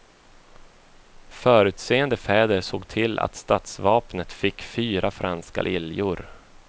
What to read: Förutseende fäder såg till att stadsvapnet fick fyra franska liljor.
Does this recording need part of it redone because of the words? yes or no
no